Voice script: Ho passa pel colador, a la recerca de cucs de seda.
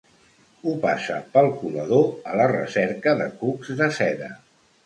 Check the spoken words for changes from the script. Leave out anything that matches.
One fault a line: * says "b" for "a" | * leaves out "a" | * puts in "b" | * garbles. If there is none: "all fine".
all fine